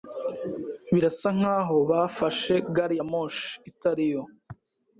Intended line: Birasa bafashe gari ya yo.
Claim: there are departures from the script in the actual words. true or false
true